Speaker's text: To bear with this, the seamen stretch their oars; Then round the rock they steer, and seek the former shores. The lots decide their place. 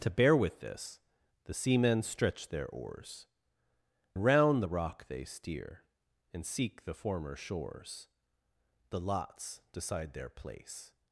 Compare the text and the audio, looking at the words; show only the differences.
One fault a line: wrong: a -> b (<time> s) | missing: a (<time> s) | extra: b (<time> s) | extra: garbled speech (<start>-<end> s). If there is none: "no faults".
missing: Then (3.3 s)